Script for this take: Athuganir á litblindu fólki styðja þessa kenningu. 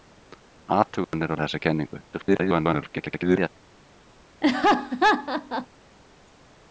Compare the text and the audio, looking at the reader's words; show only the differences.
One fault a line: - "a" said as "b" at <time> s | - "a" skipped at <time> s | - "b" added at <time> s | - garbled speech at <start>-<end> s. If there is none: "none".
- "litblindu fólki styðja" skipped at 1.3 s
- garbled speech at 2.1-3.5 s